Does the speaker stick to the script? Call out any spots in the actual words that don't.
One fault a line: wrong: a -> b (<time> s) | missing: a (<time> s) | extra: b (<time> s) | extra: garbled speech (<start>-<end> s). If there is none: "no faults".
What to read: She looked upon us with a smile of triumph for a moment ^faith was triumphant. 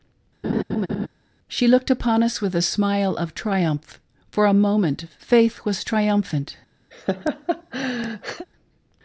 no faults